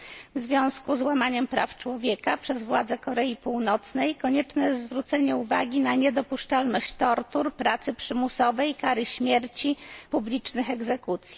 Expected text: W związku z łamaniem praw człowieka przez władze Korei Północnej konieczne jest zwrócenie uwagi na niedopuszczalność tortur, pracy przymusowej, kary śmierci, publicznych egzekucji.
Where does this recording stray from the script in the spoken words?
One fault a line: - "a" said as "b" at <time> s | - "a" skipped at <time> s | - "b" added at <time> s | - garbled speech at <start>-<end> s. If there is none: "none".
none